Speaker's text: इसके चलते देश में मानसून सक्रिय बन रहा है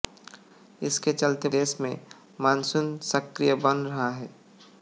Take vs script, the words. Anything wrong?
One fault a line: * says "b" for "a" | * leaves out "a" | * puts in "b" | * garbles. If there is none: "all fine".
all fine